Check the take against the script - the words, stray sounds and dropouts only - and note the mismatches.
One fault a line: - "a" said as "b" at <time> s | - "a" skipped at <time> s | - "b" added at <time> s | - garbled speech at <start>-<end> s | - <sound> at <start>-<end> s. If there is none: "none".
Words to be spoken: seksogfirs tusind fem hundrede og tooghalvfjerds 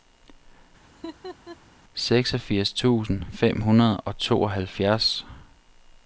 - laugh at 0.9-1.6 s